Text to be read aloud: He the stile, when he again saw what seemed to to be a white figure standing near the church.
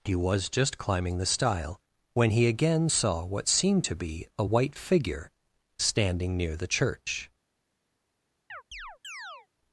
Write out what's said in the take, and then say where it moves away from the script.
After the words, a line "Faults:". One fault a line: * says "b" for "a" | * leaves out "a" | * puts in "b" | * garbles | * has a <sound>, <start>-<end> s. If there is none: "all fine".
He was just climbing the stile, when he again saw what seemed to be a white figure standing near the church.
Faults:
* puts in "was just climbing"
* leaves out "to"
* has a chirp, 8.5-9.5 s